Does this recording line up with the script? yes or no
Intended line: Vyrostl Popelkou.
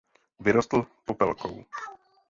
yes